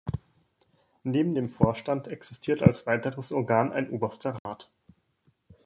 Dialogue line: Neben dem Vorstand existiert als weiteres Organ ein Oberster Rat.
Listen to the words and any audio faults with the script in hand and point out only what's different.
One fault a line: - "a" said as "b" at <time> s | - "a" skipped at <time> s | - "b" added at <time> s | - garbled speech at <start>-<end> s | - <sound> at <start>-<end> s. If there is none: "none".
- dropout at 4.4-4.5 s